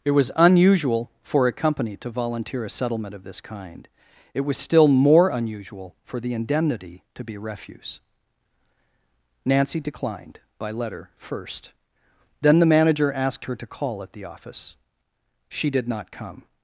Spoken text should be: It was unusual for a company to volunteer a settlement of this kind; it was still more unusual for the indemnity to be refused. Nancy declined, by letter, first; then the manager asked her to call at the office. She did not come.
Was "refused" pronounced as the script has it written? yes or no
no